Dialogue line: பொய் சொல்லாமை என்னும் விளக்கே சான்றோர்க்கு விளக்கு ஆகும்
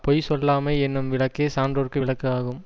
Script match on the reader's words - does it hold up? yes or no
yes